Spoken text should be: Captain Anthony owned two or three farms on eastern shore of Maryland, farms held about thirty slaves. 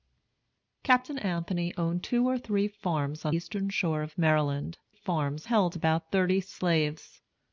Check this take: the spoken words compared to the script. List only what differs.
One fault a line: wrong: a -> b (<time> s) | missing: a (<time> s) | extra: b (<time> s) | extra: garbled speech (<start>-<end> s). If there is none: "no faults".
no faults